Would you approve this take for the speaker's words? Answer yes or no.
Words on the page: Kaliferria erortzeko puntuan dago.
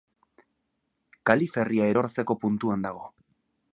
yes